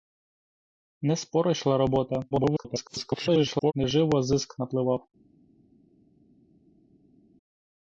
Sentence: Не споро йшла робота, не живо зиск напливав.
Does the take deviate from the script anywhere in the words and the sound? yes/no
yes